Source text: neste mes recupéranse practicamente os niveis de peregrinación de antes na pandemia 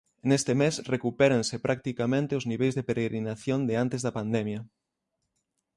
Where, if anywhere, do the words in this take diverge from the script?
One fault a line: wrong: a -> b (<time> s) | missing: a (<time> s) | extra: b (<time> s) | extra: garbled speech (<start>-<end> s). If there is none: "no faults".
wrong: na -> da (4.0 s)